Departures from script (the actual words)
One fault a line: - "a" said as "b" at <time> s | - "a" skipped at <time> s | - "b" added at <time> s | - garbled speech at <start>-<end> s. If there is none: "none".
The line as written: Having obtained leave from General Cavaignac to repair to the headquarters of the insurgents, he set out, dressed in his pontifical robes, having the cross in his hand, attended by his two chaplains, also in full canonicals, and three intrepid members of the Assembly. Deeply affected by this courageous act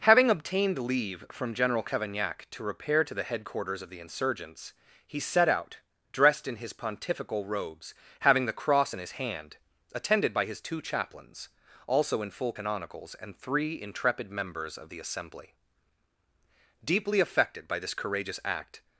none